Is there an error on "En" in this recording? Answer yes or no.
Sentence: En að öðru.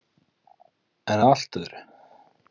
no